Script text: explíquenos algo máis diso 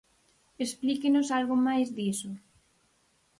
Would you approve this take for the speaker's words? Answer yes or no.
yes